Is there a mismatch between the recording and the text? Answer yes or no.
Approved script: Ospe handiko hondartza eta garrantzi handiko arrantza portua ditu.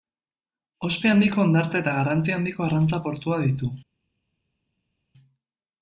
no